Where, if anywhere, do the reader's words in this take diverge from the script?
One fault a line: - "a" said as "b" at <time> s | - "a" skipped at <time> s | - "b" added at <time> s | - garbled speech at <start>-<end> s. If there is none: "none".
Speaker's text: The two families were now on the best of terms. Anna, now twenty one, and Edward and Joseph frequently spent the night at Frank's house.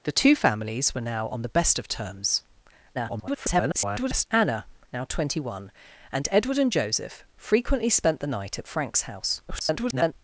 - garbled speech at 2.9-4.3 s
- garbled speech at 9.5-10.1 s